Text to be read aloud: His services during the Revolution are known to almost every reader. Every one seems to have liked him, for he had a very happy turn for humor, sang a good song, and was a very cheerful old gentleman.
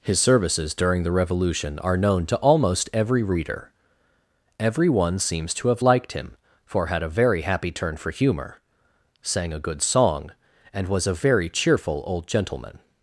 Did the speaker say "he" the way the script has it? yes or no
no